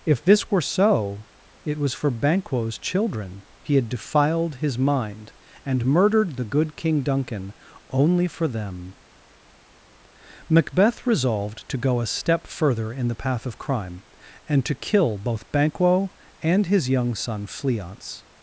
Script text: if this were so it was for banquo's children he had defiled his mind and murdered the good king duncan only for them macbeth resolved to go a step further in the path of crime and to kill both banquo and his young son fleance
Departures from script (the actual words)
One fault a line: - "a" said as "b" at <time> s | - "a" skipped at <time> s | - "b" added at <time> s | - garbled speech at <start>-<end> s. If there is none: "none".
none